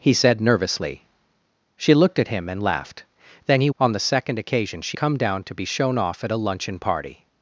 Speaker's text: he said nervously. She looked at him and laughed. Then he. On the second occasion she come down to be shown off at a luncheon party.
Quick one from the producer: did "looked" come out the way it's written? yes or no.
yes